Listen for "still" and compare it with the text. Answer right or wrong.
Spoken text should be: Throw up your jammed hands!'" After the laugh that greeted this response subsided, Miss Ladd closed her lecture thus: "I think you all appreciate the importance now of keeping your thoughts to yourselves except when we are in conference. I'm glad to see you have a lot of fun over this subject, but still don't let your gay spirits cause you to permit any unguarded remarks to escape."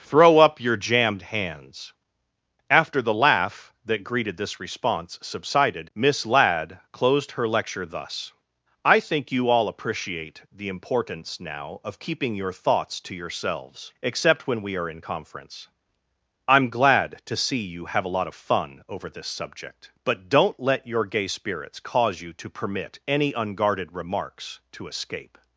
wrong